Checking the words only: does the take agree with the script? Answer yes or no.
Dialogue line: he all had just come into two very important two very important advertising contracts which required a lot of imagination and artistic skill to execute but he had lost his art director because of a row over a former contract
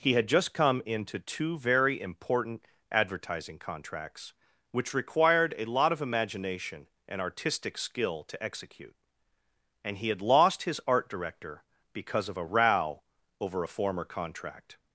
no